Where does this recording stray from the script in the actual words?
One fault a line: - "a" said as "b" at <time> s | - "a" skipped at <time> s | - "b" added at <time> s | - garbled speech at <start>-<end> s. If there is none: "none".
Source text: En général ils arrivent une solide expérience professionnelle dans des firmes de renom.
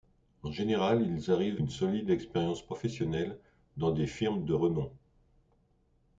none